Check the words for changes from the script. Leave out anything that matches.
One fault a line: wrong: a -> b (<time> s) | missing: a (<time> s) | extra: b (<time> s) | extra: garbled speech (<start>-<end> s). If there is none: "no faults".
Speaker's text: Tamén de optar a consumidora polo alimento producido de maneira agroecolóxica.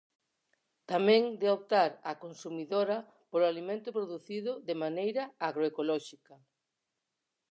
no faults